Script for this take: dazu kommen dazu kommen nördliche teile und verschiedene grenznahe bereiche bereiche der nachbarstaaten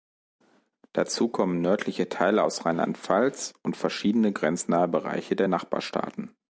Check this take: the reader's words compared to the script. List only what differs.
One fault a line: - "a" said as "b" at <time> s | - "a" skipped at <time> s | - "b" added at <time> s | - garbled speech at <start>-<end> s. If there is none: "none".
- "dazu kommen nördliche teile" said as "nördliche teile aus rheinland pfalz" at 1.6 s
- "bereiche" skipped at 5.3 s